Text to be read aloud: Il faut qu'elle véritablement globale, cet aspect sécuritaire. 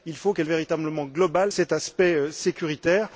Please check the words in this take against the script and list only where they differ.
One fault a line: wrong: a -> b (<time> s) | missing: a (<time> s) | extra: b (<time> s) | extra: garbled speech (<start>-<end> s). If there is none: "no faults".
no faults